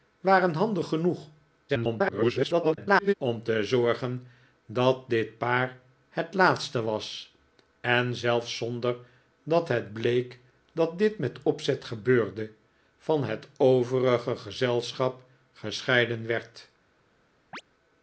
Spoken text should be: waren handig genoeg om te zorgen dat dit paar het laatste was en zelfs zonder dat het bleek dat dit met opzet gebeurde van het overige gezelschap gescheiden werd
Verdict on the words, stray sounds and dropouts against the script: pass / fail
fail